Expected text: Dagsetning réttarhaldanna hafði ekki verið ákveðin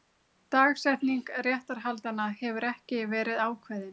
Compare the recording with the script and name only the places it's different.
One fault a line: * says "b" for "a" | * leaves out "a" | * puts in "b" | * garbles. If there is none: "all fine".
* says "hefur" for "hafði"